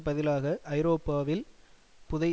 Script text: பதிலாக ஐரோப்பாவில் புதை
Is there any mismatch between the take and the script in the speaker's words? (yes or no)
no